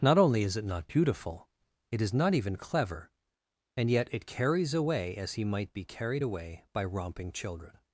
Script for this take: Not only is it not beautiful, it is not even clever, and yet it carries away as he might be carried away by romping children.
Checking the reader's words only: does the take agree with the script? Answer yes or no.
yes